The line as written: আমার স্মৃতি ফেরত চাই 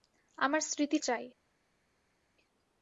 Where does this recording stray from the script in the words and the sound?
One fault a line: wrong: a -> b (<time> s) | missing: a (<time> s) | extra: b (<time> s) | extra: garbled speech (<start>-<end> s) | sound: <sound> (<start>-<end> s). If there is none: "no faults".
missing: ফেরত (1.0 s)